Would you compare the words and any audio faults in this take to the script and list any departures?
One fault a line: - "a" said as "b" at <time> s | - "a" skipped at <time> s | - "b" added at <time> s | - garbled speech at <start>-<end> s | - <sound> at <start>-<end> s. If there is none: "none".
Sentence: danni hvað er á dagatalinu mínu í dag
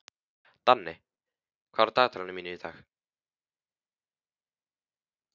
none